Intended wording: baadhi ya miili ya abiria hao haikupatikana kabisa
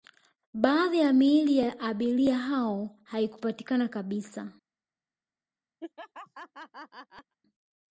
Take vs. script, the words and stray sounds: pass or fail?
fail